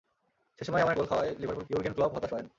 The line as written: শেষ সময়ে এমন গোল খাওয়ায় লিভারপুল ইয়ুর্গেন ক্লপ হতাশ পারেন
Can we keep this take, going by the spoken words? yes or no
yes